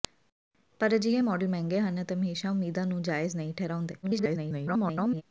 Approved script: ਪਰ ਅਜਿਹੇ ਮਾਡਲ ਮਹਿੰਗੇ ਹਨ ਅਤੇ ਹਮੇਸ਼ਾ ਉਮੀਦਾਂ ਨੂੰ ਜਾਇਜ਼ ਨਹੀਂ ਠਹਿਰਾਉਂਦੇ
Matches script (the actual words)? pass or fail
fail